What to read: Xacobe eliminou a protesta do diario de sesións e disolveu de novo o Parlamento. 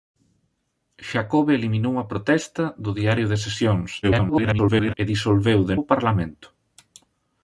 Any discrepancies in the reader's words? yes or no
yes